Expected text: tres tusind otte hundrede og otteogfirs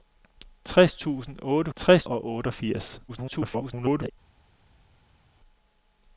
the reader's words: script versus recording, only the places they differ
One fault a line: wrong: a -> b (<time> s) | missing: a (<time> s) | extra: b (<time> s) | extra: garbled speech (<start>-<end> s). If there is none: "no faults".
wrong: hundrede -> tres (1.8 s)
extra: garbled speech (3.1-4.1 s)